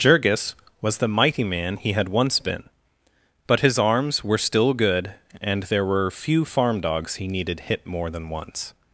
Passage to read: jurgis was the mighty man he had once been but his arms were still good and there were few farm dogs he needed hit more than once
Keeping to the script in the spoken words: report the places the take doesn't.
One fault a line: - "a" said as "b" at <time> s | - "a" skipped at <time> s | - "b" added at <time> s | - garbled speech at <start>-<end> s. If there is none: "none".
none